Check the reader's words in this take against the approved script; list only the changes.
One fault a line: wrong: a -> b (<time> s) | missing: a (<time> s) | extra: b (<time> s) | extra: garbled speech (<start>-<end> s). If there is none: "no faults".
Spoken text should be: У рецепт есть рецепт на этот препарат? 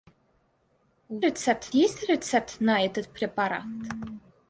no faults